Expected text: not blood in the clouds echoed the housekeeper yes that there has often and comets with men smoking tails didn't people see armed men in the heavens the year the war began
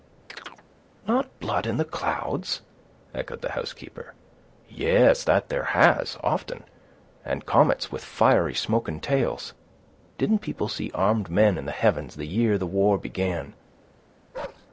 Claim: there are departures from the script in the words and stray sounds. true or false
true